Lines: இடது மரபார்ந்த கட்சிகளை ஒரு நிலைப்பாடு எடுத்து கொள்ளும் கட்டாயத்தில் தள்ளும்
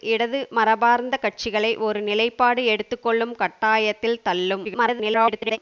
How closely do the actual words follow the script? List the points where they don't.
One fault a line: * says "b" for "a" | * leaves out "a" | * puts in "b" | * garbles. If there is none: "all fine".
* garbles